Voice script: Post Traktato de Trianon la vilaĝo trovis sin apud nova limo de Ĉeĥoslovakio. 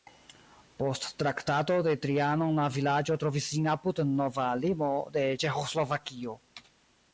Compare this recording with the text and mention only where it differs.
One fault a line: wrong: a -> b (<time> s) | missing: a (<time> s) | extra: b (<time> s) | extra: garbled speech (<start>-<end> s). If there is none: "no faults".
no faults